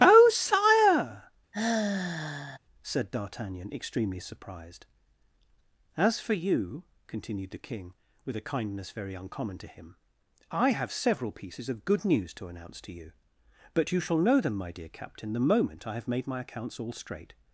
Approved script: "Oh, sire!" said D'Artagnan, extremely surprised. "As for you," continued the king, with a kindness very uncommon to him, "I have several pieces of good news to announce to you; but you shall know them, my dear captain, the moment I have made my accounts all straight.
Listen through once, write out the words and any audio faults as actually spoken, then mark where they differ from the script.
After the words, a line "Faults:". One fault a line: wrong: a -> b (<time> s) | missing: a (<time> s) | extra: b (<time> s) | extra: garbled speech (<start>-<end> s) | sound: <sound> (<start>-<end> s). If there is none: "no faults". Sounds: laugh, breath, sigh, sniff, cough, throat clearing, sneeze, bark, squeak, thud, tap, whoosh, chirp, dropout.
"Oh, sire!" said D'Artagnan, extremely surprised. "As for you," continued the king, with a kindness very uncommon to him, "I have several pieces of good news to announce to you; but you shall know them, my dear captain, the moment I have made my accounts all straight.
Faults:
sound: sigh (1.5-2.6 s)